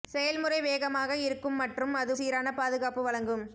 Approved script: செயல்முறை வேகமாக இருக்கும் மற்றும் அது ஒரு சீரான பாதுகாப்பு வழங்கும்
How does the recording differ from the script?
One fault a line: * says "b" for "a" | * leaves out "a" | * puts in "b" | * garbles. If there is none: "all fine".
* leaves out "ஒரு"